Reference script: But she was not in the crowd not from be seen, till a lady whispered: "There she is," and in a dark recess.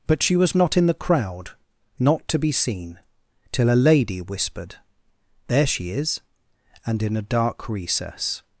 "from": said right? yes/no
no